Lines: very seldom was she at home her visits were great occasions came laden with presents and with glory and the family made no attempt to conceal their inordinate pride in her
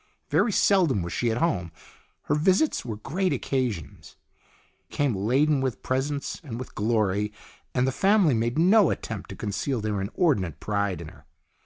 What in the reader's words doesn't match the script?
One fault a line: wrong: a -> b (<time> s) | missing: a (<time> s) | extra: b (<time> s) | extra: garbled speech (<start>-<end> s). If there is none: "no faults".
no faults